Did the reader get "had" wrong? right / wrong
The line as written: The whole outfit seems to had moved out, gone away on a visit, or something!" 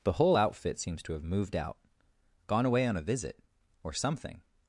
wrong